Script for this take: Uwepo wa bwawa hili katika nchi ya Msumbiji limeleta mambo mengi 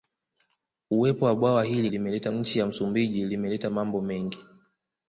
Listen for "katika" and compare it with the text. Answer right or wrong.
wrong